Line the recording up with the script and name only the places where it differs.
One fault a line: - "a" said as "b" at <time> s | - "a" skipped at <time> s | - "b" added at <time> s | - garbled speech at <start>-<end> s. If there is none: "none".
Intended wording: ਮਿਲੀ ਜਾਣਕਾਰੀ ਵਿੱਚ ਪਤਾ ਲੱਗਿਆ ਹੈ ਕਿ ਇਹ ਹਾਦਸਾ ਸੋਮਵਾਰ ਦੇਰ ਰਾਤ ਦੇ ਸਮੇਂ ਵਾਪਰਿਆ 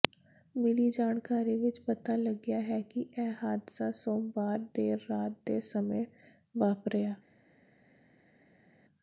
none